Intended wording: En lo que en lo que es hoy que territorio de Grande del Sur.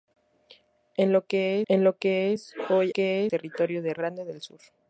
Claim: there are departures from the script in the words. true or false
false